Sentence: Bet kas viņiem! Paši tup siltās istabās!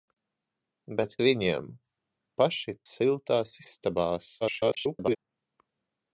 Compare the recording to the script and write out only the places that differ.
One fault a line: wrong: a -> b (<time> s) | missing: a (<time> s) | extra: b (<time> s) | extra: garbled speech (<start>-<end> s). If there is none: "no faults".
missing: kas (1.1 s)
missing: tup (2.8 s)
extra: garbled speech (4.4-5.2 s)